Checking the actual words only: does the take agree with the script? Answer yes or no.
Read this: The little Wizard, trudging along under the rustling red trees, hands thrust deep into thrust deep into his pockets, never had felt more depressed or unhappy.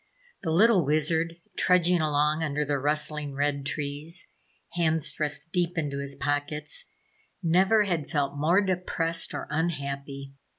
no